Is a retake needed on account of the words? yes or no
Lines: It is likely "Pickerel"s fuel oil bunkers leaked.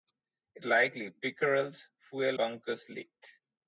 yes